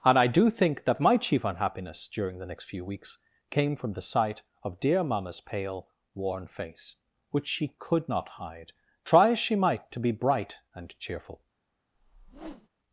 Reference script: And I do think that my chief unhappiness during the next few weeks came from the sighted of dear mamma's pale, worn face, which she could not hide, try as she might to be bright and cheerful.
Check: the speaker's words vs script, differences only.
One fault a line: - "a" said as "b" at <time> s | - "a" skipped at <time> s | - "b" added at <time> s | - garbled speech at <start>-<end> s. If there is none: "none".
- "sighted" said as "sight" at 4.0 s